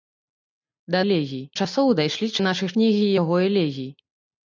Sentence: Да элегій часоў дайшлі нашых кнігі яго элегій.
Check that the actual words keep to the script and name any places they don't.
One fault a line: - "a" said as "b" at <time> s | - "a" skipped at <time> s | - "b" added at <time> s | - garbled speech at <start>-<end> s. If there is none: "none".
none